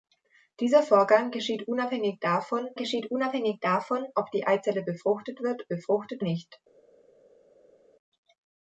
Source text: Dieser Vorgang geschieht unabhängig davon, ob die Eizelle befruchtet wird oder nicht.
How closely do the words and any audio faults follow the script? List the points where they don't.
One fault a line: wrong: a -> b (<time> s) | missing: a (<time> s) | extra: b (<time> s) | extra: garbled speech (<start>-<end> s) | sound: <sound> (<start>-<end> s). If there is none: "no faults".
extra: geschieht unabhängig davon (2.8 s)
wrong: oder -> befruchtet (5.7 s)